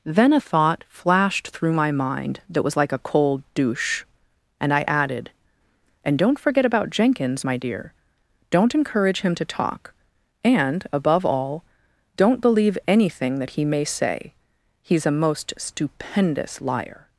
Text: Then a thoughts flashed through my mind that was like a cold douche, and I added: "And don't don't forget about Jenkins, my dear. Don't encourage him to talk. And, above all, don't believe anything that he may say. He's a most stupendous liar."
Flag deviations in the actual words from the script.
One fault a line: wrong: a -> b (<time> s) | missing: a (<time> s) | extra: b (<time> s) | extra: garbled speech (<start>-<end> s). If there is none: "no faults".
wrong: thoughts -> thought (0.4 s)
missing: don't (6.4 s)